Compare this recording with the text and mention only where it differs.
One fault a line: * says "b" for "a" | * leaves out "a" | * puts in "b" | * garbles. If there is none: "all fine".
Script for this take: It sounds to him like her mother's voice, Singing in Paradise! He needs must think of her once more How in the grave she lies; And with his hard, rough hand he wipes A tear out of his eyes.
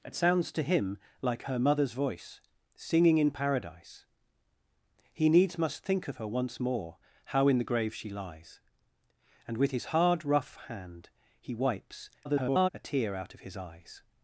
* garbles